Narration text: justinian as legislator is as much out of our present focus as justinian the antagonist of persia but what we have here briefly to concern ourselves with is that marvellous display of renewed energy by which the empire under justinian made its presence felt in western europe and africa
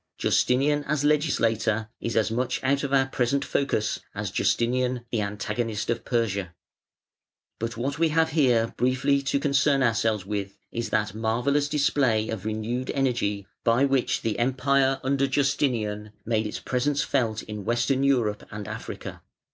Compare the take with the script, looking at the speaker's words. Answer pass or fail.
pass